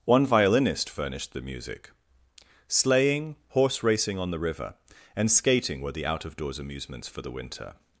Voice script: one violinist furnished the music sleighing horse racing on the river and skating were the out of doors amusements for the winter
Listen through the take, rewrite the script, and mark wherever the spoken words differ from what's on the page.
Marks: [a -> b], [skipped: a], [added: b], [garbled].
one violinist furnished the music sleighing horse racing on the river and skating were the out of doors amusements for the winter